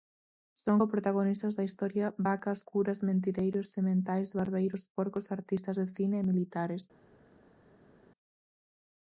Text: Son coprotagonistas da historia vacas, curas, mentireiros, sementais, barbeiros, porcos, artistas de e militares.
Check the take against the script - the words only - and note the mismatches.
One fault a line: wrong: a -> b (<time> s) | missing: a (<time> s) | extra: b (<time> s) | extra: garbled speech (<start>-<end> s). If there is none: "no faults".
extra: cine (6.0 s)